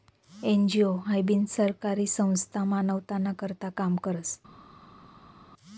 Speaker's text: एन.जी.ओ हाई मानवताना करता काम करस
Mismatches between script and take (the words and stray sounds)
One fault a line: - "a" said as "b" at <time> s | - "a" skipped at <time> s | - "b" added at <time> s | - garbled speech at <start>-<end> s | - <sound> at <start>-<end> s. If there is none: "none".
- "बिनसरकारी संस्था" added at 1.2 s